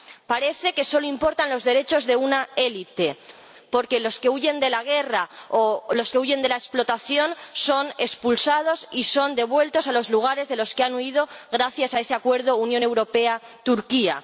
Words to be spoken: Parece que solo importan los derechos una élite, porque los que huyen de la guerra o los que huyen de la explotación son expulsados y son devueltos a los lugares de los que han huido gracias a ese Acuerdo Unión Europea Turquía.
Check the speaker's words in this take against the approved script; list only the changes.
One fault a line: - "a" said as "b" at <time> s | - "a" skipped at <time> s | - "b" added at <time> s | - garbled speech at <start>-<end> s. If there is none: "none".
- "de" added at 2.0 s